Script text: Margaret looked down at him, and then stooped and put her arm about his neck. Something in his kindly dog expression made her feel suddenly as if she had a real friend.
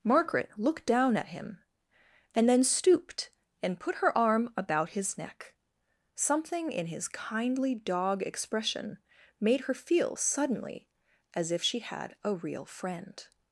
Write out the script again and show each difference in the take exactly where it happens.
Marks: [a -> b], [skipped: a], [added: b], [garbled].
Margaret looked down at him, and then stooped and put her arm about his neck. Something in his kindly dog expression made her feel suddenly as if she had a real friend.